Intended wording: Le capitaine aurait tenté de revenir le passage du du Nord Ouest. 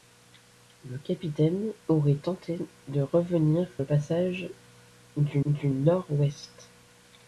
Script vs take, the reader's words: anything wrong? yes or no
no